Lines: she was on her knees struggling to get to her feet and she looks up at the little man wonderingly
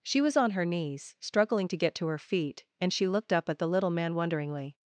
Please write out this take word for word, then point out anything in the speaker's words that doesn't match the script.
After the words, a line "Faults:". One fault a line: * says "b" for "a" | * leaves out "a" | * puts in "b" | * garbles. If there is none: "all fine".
she was on her knees struggling to get to her feet and she looked up at the little man wonderingly
Faults:
* says "looked" for "looks"